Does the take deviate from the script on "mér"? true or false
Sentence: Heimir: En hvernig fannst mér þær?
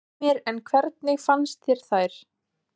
true